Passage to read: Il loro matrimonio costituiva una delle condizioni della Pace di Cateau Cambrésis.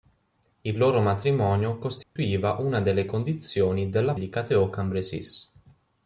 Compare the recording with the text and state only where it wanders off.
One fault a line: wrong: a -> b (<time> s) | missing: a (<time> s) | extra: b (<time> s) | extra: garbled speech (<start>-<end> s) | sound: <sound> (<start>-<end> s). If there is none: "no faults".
sound: dropout (2.0-2.2 s)
missing: Pace (4.2 s)